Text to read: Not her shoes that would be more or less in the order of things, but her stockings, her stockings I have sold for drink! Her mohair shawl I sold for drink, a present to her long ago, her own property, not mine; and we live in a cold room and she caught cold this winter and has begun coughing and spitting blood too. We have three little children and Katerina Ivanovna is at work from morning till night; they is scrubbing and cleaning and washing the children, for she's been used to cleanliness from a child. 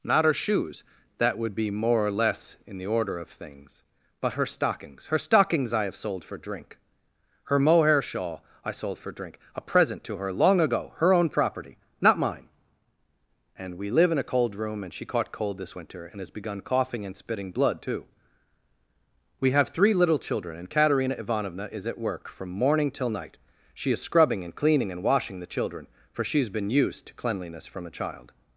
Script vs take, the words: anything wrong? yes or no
yes